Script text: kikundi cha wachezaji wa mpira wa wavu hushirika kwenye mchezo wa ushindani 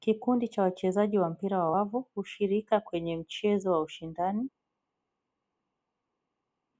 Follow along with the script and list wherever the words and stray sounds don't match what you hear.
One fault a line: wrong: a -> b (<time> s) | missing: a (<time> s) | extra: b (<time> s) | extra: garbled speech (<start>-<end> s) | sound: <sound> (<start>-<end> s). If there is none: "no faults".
no faults